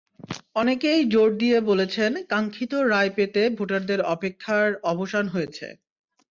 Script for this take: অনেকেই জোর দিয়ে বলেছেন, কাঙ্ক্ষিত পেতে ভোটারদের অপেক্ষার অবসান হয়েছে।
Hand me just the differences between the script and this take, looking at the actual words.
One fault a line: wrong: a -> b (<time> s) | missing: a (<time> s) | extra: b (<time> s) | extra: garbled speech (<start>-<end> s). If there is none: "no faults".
extra: রায় (2.9 s)